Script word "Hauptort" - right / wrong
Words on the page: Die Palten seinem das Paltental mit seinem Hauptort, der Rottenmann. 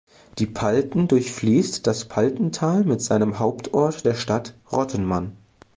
right